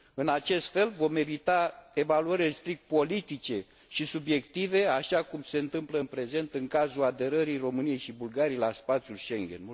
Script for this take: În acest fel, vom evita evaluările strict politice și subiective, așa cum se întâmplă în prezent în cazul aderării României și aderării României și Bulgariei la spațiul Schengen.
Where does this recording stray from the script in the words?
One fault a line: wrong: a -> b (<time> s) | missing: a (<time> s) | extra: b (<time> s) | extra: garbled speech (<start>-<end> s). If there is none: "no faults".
missing: aderării României și (8.1 s)